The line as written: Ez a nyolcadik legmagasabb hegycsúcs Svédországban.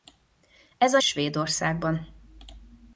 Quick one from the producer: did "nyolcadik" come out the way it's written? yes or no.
no